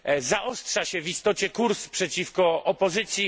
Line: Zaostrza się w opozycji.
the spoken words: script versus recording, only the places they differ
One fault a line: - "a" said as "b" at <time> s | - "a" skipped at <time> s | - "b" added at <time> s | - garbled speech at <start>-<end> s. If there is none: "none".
- "istocie kurs przeciwko" added at 1.1 s